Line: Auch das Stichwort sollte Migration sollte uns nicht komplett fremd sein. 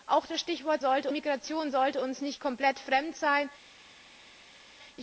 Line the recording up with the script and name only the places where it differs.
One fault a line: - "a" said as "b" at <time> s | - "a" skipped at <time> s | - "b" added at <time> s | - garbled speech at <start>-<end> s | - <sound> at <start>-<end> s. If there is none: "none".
none